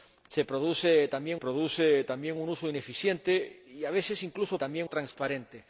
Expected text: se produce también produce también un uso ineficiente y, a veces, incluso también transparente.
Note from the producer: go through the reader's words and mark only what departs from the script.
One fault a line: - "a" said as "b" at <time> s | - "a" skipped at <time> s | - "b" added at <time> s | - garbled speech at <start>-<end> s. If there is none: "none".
none